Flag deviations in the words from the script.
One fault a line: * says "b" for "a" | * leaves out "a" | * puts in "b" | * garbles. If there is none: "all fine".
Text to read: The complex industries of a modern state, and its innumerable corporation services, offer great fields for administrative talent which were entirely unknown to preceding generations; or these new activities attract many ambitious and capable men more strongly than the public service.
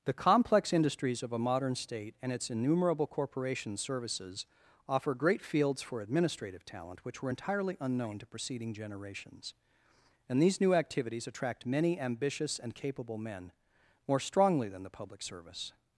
* says "and" for "or"